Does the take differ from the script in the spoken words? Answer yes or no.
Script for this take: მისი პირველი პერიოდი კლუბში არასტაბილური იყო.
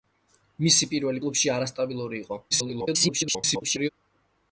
yes